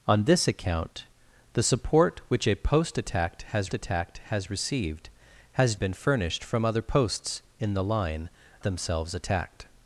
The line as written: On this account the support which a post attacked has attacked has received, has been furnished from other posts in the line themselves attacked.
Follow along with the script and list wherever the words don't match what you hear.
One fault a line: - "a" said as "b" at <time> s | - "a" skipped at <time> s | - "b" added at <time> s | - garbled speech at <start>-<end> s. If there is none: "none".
none